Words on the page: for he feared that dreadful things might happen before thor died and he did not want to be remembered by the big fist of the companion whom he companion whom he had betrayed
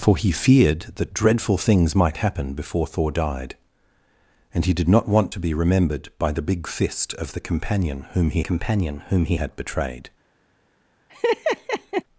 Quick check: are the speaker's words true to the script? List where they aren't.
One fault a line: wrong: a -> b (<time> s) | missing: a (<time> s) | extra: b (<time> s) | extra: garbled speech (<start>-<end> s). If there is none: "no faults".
no faults